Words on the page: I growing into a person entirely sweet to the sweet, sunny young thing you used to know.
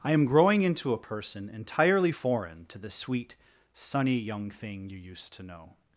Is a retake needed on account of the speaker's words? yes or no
yes